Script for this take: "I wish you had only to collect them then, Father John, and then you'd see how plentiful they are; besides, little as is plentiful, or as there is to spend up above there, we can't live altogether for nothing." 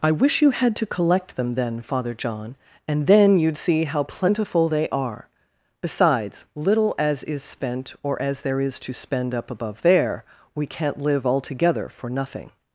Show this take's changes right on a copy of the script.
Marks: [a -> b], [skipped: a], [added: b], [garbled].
"I wish you had [skipped: only] to collect them then, Father John, and then you'd see how plentiful they are; besides, little as is [plentiful, -> spent] or as there is to spend up above there, we can't live altogether for nothing."